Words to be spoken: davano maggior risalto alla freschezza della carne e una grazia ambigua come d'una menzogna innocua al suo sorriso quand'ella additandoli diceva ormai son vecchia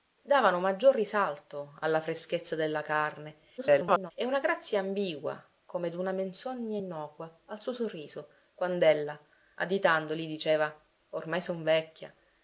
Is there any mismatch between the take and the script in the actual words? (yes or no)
yes